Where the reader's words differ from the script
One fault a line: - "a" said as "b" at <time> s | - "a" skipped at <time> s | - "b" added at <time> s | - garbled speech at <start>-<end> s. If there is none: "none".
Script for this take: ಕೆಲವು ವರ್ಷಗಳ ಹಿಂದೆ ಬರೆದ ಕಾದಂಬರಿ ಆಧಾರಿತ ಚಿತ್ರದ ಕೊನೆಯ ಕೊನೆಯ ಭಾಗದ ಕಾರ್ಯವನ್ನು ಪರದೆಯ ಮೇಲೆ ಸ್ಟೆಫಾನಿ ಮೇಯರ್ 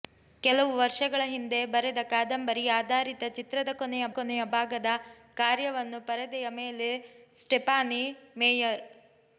none